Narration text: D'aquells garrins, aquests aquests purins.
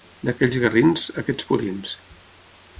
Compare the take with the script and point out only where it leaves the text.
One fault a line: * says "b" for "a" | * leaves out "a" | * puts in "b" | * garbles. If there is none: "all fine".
* leaves out "aquests"